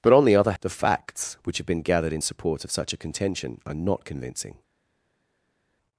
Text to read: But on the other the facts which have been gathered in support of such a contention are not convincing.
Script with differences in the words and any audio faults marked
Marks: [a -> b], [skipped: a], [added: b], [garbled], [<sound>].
But on the other the facts which have been gathered in support of such a contention are not convincing.